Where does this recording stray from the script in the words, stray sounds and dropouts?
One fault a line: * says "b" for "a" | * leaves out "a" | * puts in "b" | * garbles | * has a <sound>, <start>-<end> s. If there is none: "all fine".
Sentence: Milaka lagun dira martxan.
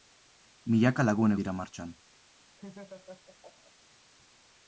* has a laugh, 2.6-3.7 s